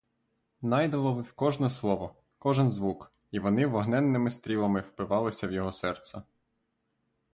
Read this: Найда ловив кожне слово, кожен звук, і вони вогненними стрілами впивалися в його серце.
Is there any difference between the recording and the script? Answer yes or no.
no